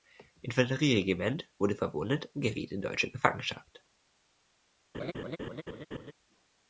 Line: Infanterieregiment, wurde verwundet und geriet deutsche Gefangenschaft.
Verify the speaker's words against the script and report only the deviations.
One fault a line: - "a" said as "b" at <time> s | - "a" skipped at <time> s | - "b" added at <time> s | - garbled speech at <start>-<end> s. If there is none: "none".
- "in" added at 2.7 s